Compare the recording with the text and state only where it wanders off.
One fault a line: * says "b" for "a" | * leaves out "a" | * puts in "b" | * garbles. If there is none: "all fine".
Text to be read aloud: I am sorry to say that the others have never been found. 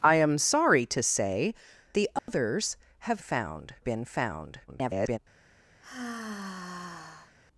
* leaves out "that"
* says "found" for "never"
* garbles